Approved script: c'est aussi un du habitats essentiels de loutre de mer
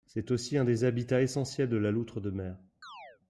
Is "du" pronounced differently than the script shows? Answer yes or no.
yes